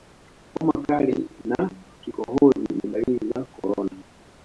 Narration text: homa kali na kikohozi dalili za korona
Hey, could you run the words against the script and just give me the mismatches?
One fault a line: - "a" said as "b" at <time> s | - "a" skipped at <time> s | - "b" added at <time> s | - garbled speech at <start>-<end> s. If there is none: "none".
- "ni" added at 2.7 s